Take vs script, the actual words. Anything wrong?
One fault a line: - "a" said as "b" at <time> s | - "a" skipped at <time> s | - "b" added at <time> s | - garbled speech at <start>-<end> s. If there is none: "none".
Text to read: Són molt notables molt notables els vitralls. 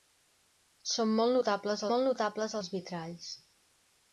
none